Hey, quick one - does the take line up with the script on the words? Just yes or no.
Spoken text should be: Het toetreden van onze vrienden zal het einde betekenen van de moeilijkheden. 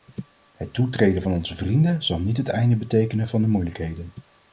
no